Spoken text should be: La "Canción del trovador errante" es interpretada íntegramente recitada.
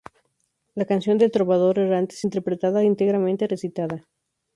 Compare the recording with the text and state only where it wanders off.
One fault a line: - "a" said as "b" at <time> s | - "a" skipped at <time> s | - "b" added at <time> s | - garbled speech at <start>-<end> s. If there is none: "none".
none